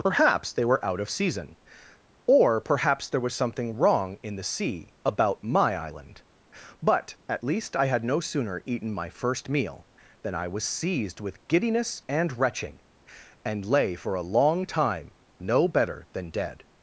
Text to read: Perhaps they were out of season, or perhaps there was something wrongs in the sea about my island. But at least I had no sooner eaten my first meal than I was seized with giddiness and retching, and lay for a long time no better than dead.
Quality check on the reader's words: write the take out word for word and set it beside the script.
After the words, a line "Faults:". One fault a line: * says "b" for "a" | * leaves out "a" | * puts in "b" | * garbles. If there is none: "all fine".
Perhaps they were out of season, or perhaps there was something wrong in the sea about my island. But at least I had no sooner eaten my first meal than I was seized with giddiness and retching, and lay for a long time no better than dead.
Faults:
* says "wrong" for "wrongs"